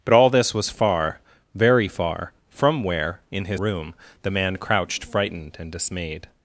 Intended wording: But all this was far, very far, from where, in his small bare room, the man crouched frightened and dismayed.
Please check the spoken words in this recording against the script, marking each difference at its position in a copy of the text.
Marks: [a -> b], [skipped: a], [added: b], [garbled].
But all this was far, very far, from where, in his [skipped: small bare] room, the man crouched frightened and dismayed.